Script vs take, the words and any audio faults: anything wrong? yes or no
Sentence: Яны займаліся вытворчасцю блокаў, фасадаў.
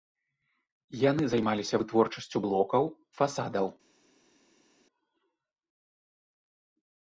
no